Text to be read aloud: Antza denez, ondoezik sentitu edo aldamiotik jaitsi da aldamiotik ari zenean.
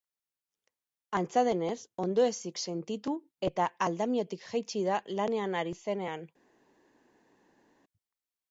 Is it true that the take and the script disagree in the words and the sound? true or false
true